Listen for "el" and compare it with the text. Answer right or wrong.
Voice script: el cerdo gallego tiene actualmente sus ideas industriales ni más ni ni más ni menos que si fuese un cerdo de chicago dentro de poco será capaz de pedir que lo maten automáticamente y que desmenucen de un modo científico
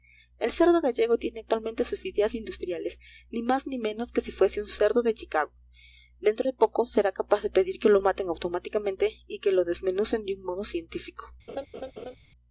right